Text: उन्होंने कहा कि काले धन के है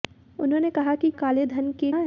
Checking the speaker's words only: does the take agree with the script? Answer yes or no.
yes